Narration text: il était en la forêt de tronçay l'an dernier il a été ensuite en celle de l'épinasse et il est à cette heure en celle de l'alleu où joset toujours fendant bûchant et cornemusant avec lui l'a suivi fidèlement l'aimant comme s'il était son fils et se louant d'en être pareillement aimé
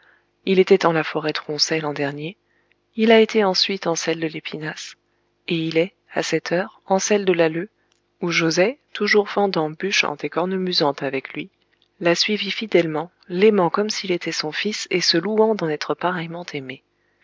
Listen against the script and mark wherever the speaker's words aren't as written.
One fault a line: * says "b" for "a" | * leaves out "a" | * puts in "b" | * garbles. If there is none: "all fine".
* leaves out "de"